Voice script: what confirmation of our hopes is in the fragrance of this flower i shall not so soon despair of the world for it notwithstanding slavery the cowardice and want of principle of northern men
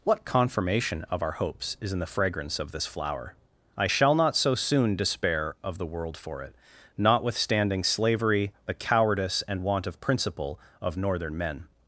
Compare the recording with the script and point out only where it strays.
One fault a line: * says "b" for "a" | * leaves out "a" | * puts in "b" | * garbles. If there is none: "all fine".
all fine